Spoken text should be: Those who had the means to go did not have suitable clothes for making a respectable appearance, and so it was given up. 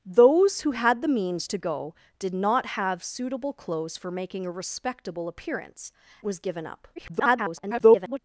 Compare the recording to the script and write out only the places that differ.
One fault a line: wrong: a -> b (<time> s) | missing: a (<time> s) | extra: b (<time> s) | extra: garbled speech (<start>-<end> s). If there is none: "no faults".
missing: and so it (5.9 s)
extra: garbled speech (7.0-8.2 s)